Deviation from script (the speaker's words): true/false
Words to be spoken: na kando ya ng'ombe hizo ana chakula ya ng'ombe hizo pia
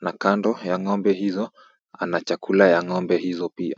false